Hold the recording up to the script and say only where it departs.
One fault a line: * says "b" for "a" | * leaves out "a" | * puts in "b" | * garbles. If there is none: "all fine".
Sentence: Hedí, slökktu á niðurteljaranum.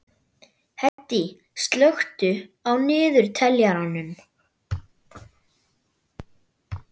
all fine